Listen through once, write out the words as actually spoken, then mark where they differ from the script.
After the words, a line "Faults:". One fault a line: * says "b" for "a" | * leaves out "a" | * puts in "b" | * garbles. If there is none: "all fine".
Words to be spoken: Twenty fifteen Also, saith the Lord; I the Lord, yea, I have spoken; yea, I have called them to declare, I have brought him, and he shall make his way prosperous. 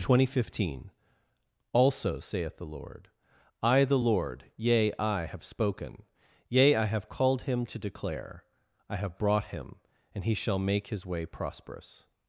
Twenty fifteen Also, saith the Lord; I the Lord, yea, I have spoken; yea, I have called him to declare, I have brought him, and he shall make his way prosperous.
Faults:
* says "him" for "them"